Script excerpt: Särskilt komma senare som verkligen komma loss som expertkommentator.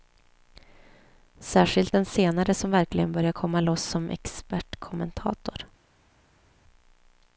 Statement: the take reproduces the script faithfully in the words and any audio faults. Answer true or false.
false